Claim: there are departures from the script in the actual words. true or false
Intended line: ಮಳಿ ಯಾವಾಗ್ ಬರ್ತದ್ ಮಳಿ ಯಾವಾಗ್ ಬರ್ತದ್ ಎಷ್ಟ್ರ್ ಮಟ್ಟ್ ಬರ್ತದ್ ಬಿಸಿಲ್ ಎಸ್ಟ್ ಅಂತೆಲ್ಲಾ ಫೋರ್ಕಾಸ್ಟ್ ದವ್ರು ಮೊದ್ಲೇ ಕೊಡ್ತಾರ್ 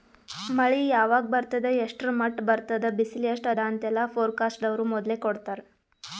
true